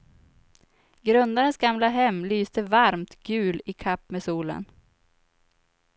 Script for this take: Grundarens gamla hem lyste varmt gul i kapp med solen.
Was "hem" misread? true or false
false